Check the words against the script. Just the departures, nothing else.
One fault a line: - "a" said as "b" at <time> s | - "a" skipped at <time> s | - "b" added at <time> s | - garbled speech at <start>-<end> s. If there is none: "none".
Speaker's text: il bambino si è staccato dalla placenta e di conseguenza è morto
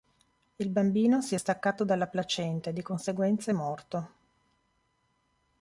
none